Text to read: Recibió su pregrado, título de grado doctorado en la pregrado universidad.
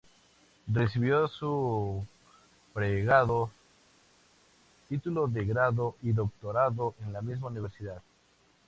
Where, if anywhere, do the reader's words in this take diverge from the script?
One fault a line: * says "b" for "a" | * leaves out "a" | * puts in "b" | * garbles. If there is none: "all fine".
* puts in "y"
* says "misma" for "pregrado"